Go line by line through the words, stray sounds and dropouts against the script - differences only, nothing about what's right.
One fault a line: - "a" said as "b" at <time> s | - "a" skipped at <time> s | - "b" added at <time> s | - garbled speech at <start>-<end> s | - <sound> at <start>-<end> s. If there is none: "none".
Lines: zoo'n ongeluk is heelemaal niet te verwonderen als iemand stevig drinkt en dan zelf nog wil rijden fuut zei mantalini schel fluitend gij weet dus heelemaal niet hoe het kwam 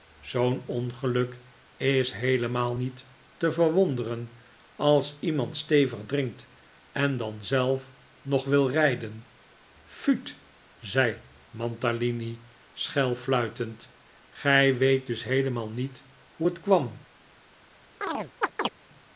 - chirp at 18.0-18.7 s